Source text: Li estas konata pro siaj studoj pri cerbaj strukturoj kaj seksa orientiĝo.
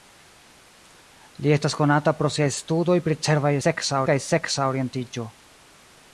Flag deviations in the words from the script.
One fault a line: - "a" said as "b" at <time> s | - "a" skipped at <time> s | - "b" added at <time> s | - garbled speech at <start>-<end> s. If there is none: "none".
- "strukturoj" said as "seksa" at 3.6 s